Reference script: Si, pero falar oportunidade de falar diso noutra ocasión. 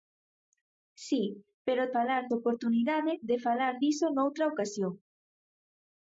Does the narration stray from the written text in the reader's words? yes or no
no